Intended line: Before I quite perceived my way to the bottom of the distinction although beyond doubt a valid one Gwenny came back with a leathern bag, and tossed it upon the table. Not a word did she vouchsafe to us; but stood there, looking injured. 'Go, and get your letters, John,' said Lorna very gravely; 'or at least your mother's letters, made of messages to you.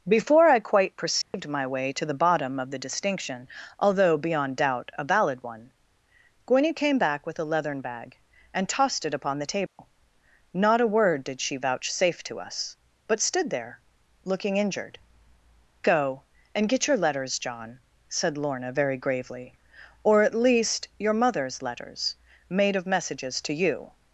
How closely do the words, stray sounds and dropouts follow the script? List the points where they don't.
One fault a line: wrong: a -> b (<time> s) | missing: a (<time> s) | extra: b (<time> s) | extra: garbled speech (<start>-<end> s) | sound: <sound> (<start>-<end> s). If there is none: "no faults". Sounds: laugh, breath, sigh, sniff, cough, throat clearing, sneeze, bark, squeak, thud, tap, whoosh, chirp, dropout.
sound: dropout (1.2-1.3 s)
sound: dropout (9.7-9.8 s)